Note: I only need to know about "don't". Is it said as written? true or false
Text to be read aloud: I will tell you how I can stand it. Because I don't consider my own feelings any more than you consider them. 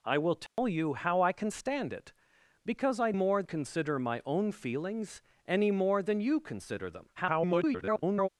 false